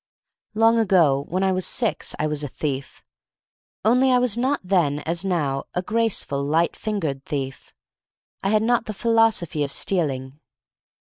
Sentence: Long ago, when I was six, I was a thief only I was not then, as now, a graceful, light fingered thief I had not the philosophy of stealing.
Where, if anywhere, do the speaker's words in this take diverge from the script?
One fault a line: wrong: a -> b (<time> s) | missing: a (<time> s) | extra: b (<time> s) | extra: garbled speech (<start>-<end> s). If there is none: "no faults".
no faults